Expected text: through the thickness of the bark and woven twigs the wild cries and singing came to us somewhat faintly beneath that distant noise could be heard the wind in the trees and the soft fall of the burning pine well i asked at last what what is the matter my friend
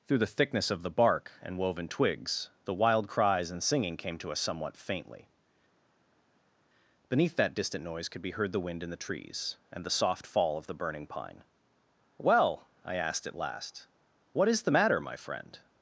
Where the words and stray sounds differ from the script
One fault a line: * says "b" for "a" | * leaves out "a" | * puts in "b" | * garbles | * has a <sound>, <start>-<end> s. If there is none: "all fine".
* leaves out "what"